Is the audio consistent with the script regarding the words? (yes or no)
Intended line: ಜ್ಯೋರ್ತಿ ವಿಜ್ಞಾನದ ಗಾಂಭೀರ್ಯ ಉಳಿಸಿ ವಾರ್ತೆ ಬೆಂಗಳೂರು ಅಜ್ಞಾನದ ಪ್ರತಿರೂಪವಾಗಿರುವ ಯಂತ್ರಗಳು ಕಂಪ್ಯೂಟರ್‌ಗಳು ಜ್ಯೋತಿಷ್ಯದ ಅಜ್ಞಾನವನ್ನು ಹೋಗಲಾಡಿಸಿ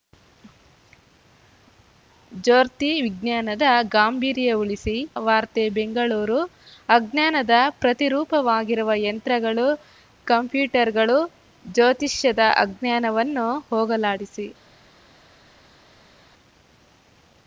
yes